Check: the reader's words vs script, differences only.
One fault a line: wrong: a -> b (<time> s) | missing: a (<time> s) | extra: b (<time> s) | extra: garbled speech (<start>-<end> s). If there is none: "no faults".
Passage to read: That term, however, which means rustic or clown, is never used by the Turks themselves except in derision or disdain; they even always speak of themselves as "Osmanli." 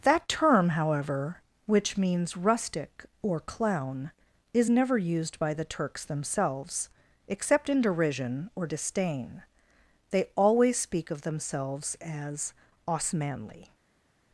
missing: even (10.2 s)